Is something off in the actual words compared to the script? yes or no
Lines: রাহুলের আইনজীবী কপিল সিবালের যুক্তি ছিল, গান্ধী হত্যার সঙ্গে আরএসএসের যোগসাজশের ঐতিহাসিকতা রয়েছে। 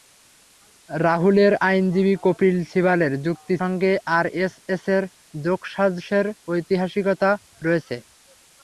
yes